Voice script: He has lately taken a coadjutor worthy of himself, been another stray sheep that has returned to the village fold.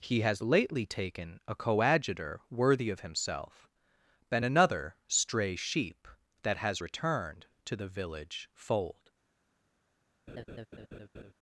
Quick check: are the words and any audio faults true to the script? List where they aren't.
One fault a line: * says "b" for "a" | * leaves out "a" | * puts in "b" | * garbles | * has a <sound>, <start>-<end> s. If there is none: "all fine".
* has a laugh, 10.3-11.3 s